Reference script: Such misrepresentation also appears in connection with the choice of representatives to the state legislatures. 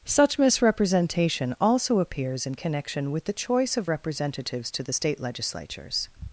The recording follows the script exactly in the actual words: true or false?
true